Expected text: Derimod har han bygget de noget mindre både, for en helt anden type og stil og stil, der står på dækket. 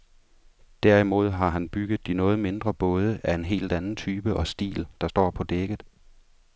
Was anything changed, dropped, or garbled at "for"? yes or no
yes